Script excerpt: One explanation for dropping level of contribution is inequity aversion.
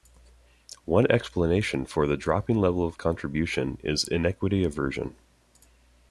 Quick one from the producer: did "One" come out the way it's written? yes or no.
yes